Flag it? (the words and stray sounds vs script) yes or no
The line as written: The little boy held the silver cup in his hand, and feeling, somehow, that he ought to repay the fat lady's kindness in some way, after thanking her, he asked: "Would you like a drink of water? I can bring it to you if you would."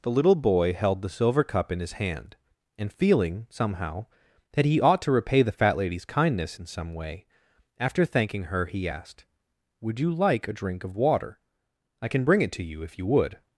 no